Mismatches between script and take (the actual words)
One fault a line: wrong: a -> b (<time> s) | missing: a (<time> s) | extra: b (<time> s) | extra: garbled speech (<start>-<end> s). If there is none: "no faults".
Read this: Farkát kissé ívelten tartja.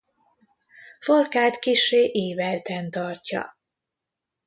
no faults